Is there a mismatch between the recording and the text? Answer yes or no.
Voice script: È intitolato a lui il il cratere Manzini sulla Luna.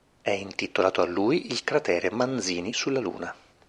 yes